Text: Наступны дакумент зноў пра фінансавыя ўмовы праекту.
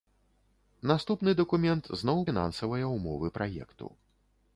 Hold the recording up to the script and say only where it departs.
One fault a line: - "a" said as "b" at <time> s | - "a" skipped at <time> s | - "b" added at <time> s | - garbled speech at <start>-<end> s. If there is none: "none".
- "пра" skipped at 2.2 s